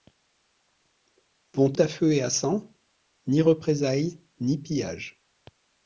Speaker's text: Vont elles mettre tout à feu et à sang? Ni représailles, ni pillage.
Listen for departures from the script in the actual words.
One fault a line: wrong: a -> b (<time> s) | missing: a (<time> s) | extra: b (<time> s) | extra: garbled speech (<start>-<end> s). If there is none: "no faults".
missing: elles mettre tout (1.7 s)